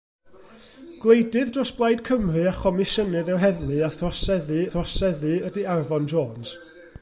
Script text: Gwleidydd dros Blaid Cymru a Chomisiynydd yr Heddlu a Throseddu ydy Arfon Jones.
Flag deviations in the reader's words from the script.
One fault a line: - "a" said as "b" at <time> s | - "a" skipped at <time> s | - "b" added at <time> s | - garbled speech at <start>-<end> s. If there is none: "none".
- "Throseddu" added at 4.7 s